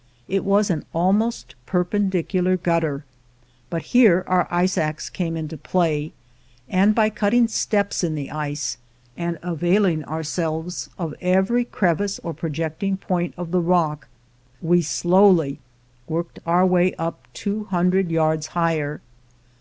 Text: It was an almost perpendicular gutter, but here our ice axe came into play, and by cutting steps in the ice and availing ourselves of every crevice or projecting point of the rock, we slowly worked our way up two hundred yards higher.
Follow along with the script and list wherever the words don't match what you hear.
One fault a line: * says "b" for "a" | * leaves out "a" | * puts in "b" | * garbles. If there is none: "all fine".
all fine